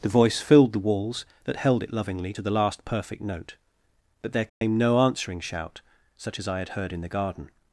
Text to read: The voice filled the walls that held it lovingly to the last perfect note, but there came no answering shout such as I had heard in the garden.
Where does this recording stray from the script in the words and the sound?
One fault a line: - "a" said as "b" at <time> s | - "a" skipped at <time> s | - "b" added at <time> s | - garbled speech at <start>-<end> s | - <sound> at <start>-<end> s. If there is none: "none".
- dropout at 4.5-4.6 s